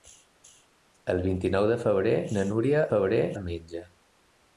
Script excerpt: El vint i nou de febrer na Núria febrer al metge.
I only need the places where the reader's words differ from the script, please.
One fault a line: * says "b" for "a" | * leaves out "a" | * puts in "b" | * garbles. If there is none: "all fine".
all fine